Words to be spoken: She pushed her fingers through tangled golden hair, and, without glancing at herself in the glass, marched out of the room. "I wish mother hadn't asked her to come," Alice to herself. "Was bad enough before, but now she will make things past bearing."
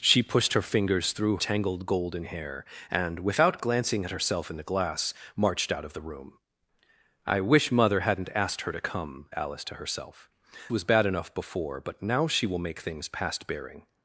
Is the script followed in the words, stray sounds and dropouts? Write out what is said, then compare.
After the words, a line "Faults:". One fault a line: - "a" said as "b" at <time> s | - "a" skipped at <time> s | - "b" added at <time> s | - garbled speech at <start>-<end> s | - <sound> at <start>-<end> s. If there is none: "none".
She pushed her fingers through tangled golden hair, and, without glancing at herself in the glass, marched out of the room. "I wish mother hadn't asked her to come," Alice to herself. "Was bad enough before, but now she will make things past bearing."
Faults:
none